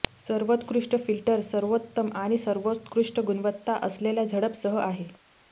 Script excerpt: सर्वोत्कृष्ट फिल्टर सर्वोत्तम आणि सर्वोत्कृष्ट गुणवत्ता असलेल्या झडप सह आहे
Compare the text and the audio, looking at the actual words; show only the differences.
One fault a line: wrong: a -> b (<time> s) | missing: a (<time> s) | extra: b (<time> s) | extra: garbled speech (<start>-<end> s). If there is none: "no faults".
no faults